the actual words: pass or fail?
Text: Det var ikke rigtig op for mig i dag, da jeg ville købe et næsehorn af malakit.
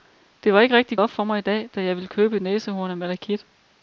pass